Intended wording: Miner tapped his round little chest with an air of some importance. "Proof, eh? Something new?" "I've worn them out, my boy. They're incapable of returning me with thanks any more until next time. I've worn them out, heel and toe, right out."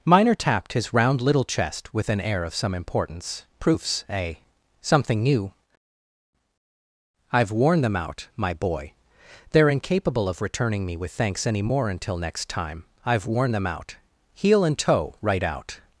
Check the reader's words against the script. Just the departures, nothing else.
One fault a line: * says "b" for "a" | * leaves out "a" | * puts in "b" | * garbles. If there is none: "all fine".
* says "Proofs" for "Proof"